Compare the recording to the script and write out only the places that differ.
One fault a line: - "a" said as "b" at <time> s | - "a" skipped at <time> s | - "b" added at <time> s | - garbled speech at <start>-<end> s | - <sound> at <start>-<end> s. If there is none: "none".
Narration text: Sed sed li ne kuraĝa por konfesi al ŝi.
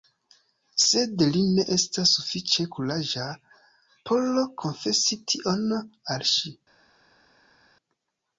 - "sed" skipped at 1.2 s
- "estas sufiĉe" added at 1.8 s
- "tion" added at 5.3 s